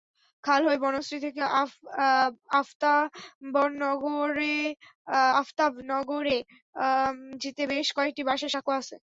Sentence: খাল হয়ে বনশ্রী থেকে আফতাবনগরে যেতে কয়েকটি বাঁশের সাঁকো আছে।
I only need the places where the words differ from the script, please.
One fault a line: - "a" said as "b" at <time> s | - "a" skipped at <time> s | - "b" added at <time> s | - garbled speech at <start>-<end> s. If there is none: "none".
- "বেশ" added at 7.7 s